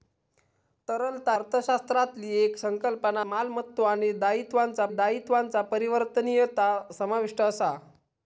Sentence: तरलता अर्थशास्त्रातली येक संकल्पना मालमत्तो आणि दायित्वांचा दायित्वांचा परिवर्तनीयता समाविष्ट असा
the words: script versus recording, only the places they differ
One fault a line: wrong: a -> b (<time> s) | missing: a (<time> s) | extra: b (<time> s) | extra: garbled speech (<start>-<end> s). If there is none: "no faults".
no faults